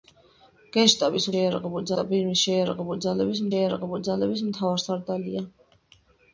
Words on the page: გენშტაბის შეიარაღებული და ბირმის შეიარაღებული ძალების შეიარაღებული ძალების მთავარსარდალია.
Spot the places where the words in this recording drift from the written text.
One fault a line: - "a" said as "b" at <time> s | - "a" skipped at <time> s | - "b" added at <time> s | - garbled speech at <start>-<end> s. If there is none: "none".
none